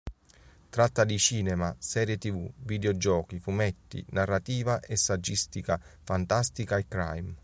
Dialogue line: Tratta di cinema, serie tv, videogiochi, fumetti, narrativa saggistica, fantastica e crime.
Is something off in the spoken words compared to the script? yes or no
yes